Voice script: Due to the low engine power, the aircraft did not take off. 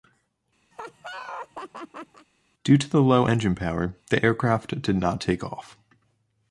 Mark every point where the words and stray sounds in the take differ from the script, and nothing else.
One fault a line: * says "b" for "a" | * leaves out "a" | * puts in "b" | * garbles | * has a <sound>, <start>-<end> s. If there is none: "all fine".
* has a laugh, 0.7-2.3 s